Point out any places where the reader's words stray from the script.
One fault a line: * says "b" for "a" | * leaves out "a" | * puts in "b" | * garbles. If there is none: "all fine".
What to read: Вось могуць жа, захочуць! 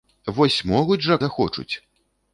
all fine